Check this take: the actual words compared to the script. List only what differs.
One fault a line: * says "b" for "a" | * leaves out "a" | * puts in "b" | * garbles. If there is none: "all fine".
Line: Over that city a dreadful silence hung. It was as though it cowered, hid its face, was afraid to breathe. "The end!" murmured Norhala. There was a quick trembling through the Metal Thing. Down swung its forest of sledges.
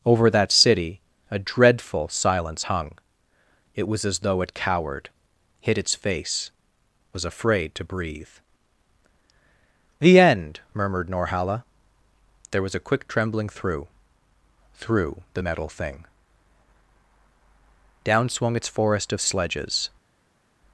* puts in "through"